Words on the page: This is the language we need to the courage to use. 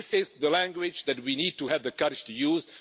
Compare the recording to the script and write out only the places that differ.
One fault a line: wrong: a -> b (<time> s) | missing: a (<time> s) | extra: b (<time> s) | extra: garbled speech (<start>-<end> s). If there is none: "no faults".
extra: that (1.1 s)
extra: have (1.6 s)